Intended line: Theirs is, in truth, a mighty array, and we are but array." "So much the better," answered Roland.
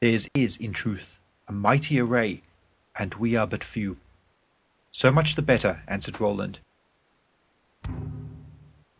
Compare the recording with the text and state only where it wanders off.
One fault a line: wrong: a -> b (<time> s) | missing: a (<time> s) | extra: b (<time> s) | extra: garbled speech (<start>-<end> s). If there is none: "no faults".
wrong: array -> few (3.6 s)